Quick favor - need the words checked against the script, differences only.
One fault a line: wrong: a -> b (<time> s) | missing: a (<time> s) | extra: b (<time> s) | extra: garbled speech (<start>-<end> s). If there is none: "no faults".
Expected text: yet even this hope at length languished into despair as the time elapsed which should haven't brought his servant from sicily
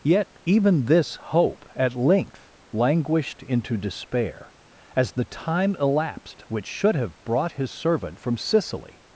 wrong: haven't -> have (7.0 s)